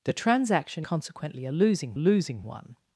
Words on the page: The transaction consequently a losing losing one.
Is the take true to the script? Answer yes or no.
yes